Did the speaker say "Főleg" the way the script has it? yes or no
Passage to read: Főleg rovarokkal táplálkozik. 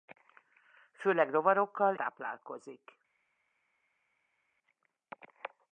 yes